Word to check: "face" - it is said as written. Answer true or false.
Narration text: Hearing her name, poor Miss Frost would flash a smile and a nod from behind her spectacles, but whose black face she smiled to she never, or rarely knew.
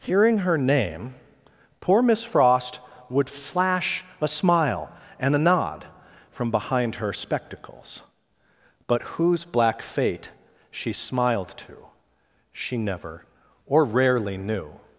false